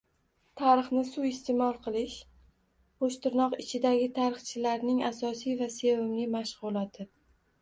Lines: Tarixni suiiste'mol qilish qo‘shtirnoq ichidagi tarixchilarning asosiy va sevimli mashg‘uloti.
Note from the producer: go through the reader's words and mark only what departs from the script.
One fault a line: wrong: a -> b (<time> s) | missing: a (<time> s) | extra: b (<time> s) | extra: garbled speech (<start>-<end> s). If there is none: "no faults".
no faults